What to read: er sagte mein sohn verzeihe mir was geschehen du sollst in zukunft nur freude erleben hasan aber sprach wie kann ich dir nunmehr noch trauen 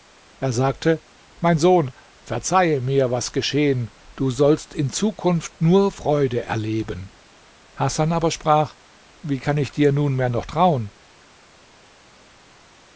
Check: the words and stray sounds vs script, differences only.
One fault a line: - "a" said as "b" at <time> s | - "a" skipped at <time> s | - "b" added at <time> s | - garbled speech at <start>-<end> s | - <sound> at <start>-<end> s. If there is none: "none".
none